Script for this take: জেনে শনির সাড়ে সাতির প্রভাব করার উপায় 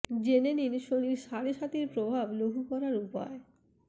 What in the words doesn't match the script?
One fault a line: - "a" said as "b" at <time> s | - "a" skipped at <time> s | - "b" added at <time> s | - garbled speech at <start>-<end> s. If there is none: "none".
- "নিন" added at 0.5 s
- "লঘু" added at 2.4 s